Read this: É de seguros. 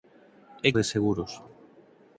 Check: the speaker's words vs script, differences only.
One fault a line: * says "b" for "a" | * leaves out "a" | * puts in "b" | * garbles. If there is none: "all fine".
all fine